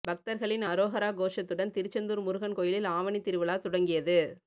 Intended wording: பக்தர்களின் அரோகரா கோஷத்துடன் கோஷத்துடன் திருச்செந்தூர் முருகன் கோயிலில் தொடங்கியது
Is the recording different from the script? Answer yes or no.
yes